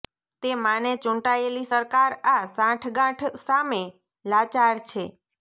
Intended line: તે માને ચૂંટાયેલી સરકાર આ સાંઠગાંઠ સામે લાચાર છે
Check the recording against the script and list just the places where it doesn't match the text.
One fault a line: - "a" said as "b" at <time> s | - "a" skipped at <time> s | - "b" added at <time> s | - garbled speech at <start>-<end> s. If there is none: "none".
none